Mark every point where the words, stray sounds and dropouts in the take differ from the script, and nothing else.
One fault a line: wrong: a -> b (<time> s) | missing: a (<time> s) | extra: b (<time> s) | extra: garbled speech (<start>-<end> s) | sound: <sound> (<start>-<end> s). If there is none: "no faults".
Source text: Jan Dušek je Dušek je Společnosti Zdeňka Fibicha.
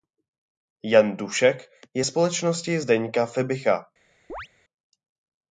missing: Dušek je (2.0 s)
sound: chirp (4.3-4.5 s)